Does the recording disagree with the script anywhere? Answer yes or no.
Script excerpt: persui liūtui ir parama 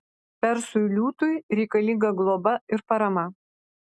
yes